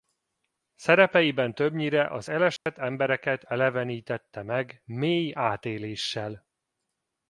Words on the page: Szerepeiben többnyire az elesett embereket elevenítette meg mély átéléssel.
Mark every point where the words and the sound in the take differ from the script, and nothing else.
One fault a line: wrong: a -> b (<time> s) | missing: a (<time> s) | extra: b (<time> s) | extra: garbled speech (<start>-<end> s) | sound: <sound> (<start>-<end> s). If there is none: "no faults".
sound: dropout (2.6-2.7 s)